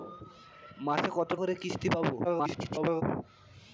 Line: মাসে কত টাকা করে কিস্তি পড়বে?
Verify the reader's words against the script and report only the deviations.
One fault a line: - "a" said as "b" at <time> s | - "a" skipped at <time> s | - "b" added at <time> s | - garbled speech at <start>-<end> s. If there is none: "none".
- "টাকা" skipped at 1.3 s
- garbled speech at 2.2-3.0 s